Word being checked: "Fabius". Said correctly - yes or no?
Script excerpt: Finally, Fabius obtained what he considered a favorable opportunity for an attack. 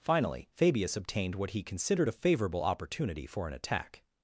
yes